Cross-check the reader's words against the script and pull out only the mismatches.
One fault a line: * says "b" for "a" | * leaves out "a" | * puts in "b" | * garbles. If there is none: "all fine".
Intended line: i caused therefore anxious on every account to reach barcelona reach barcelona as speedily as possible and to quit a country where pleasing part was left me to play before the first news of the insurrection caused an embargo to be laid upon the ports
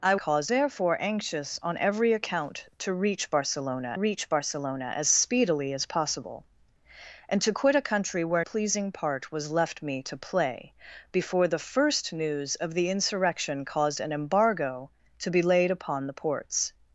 all fine